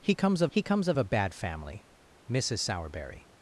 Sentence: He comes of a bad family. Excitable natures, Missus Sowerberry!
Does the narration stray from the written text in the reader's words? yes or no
yes